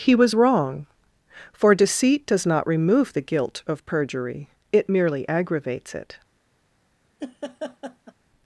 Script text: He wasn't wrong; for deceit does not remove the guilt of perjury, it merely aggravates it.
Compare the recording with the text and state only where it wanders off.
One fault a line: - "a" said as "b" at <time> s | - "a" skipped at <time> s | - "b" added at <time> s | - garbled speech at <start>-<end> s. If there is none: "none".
- "wasn't" said as "was" at 0.1 s